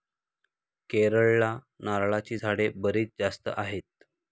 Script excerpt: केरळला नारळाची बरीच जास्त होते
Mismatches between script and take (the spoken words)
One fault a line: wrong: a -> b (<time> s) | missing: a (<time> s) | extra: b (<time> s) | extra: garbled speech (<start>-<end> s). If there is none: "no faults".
extra: झाडे (2.3 s)
wrong: होते -> आहेत (3.5 s)